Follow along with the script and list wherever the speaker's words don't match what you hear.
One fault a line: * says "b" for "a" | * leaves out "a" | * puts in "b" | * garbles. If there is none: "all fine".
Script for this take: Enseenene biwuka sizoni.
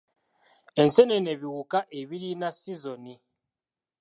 * puts in "ebirina"